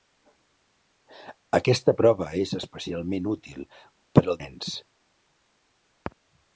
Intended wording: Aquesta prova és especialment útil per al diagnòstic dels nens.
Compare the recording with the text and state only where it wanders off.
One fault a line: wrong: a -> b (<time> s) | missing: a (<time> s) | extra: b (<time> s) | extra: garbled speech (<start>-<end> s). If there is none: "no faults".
missing: diagnòstic dels (4.4 s)